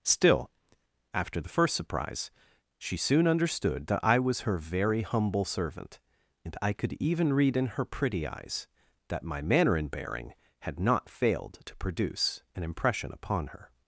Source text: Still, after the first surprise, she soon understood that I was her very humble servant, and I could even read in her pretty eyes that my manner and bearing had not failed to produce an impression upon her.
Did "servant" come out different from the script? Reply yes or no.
no